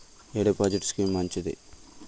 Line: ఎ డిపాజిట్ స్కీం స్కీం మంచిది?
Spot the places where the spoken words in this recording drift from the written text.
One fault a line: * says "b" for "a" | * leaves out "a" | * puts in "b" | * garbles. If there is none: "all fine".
* leaves out "స్కీం"